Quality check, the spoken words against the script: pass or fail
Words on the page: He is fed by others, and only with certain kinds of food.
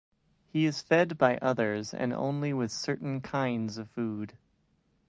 pass